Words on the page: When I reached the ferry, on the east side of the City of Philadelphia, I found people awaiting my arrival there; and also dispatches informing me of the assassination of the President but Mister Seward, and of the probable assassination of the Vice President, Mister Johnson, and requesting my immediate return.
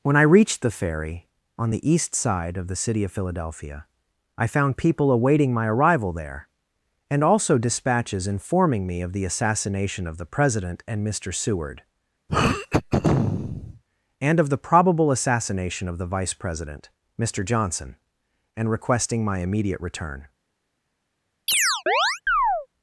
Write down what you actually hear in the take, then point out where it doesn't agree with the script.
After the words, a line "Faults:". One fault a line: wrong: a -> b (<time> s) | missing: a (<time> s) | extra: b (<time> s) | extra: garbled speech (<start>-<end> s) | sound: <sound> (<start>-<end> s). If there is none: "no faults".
When I reached the ferry, on the east side of the City of Philadelphia, I found people awaiting my arrival there; and also dispatches informing me of the assassination of the President and Mister Seward, and of the probable assassination of the Vice President, Mister Johnson, and requesting my immediate return.
Faults:
wrong: but -> and (10.9 s)
sound: throat clearing (12.3-13.8 s)
sound: chirp (21.5-22.7 s)